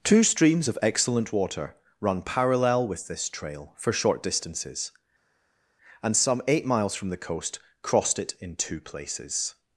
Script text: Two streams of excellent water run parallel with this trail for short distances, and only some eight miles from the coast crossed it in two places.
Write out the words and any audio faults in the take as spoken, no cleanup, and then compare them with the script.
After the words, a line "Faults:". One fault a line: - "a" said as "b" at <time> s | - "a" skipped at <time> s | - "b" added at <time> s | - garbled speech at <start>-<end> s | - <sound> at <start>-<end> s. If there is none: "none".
Two streams of excellent water run parallel with this trail for short distances, and some eight miles from the coast crossed it in two places.
Faults:
- "only" skipped at 6.2 s